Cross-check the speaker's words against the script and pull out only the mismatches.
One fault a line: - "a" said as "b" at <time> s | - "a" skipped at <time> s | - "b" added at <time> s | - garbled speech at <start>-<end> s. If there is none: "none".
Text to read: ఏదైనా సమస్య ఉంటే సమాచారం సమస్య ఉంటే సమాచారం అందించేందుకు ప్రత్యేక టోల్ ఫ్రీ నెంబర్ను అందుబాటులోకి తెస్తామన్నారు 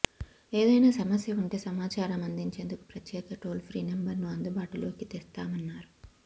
- "సమస్య ఉంటే సమాచారం" skipped at 2.2 s